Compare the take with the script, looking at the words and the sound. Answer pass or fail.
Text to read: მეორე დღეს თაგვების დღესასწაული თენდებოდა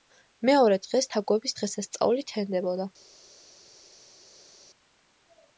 pass